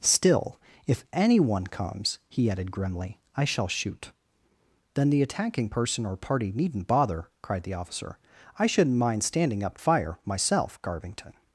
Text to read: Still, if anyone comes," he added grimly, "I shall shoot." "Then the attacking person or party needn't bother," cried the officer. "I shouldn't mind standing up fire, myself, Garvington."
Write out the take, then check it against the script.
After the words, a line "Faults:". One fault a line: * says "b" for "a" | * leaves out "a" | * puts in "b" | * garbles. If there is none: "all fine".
Still, if anyone comes," he added grimly, "I shall shoot." "Then the attacking person or party needn't bother," cried the officer. "I shouldn't mind standing up fire, myself, Garvington."
Faults:
all fine